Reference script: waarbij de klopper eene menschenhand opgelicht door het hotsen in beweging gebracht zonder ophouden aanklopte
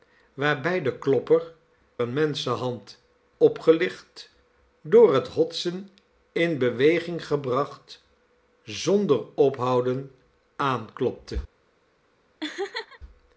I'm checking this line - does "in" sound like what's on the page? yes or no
yes